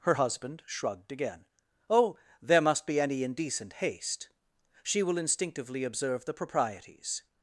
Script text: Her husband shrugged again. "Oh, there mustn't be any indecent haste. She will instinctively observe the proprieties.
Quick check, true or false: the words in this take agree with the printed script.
false